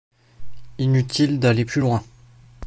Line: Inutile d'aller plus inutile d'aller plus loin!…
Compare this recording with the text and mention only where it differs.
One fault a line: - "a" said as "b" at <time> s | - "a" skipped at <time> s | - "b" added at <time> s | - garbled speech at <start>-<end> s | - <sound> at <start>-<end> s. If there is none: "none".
- "inutile d'aller plus" skipped at 1.8 s